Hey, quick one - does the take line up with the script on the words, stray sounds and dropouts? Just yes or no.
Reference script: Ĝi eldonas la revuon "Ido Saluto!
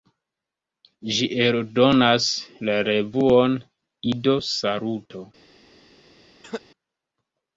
no